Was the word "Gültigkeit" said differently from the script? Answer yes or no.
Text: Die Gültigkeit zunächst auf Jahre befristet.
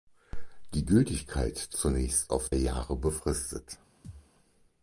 no